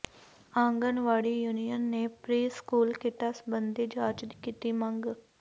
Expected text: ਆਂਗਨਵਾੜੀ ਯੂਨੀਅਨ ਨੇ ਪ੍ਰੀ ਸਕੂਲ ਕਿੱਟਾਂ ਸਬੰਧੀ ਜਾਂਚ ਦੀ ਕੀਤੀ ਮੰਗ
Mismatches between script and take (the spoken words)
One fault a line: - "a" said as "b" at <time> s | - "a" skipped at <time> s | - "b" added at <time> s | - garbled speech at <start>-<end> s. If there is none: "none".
none